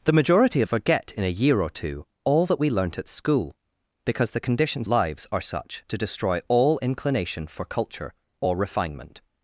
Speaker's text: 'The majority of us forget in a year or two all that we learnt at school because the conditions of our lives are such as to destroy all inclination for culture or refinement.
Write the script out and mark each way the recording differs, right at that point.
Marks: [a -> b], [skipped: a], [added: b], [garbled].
'The majority of [skipped: us] forget in a year or two all that we learnt at school because the conditions [skipped: of our] lives are such [skipped: as] to destroy all inclination for culture or refinement.